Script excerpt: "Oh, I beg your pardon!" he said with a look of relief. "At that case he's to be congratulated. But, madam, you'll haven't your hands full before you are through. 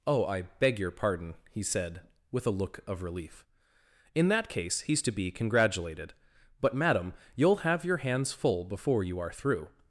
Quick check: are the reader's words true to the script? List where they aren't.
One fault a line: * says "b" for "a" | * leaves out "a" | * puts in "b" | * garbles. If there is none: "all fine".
* says "In" for "At"
* says "have" for "haven't"